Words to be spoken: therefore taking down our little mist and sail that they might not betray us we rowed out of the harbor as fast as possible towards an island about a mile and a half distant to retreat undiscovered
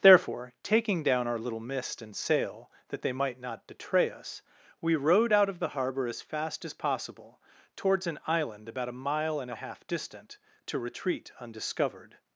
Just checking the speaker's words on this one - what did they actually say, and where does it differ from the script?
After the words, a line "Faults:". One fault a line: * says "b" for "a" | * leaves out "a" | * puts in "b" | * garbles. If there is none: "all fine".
therefore taking down our little mist and sail that they might not betray us we rowed out of the harbor as fast as possible towards an island about a mile and a half distant to retreat undiscovered
Faults:
all fine